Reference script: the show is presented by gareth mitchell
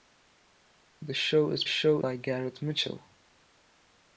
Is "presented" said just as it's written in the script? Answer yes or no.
no